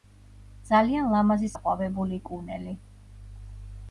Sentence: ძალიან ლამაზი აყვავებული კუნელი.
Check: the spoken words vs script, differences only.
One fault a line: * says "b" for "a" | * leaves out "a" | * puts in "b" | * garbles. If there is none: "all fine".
all fine